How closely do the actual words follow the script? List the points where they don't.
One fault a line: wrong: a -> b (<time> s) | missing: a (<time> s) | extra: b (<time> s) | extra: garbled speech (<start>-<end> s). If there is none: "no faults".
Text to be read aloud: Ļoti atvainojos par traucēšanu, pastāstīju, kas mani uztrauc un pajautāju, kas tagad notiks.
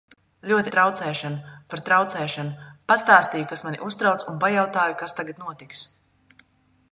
wrong: atvainojos -> traucēšanu (0.7 s)